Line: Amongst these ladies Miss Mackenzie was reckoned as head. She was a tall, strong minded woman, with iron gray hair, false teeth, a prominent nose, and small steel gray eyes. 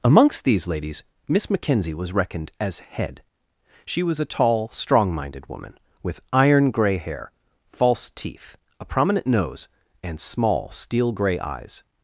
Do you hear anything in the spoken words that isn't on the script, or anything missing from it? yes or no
no